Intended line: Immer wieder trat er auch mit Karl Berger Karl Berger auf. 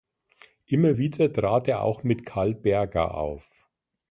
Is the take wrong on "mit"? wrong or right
right